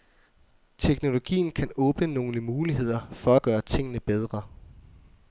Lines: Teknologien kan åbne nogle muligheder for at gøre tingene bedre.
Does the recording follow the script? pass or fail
pass